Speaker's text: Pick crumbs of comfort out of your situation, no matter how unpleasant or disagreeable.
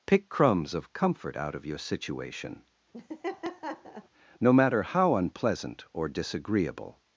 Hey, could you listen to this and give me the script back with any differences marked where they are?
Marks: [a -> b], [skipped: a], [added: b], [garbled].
Pick crumbs of comfort out of your situation, no matter how unpleasant or disagreeable.